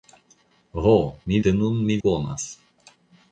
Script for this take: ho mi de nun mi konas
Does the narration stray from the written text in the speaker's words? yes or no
no